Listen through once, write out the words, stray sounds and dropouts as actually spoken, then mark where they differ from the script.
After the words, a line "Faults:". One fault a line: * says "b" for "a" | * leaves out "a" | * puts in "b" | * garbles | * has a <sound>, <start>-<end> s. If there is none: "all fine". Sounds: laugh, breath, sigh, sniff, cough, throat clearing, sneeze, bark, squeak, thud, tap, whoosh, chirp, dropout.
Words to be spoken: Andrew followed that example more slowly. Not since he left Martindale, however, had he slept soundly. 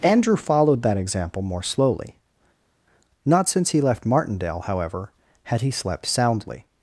Andrew followed that example more slowly. Not since he left Martindale, however, had he slept soundly.
Faults:
all fine